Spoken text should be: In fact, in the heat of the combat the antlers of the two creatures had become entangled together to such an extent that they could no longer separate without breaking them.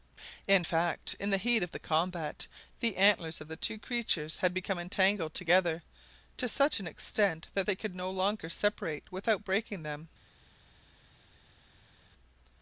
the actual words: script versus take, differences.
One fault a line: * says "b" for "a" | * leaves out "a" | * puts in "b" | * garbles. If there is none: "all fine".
all fine